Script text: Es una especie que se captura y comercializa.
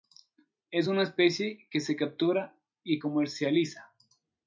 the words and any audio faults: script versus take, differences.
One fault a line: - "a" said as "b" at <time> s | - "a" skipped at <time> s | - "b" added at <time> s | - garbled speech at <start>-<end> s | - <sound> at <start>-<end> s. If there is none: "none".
none